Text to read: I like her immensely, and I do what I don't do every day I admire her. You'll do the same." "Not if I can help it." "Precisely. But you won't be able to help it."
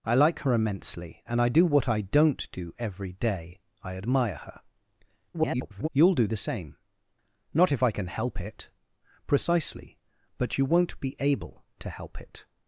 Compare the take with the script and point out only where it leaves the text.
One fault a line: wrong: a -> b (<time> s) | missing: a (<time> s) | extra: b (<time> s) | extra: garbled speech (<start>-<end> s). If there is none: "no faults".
extra: garbled speech (5.3-5.9 s)